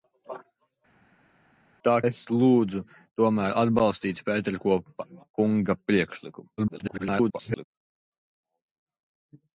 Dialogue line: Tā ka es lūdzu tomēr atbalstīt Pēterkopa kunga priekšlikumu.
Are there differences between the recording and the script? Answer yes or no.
yes